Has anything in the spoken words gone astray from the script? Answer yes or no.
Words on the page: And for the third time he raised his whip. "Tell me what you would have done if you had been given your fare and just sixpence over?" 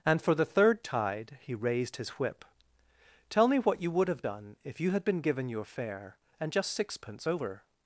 yes